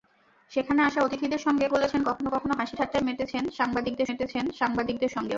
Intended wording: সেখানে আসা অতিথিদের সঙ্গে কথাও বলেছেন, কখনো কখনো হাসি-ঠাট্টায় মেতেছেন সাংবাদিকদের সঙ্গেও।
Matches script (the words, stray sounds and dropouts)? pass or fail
fail